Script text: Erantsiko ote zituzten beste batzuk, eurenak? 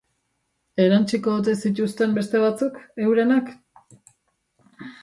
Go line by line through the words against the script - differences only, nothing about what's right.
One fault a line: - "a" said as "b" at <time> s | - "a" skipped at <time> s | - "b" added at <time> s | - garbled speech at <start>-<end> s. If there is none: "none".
none